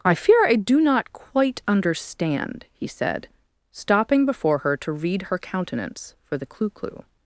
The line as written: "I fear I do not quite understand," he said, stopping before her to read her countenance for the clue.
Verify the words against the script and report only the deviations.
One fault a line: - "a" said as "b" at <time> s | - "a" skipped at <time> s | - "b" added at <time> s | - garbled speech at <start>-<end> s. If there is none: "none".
- "clue" added at 6.7 s